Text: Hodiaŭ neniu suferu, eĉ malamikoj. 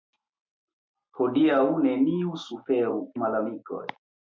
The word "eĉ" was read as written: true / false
false